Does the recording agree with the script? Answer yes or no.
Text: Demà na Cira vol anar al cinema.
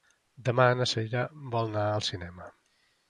yes